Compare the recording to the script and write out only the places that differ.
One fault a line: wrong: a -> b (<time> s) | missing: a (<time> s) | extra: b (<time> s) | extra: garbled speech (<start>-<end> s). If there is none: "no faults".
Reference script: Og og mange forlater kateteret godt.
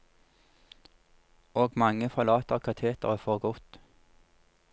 missing: og (1.7 s)
extra: for (3.2 s)